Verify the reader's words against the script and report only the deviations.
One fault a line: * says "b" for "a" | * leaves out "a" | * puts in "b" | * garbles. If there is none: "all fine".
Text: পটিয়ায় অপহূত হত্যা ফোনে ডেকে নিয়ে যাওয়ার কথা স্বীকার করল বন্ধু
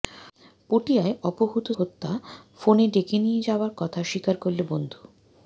all fine